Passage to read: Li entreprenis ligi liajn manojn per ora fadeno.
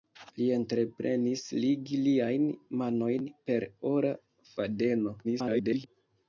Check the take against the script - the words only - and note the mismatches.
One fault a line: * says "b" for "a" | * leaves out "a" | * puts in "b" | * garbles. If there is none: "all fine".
* garbles